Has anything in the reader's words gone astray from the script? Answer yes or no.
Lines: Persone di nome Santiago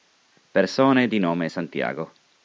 no